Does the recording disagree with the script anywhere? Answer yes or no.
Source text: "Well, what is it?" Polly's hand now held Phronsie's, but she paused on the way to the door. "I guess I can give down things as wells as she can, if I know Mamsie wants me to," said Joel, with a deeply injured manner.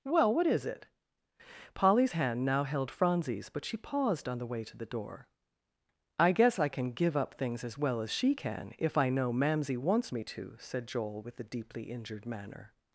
yes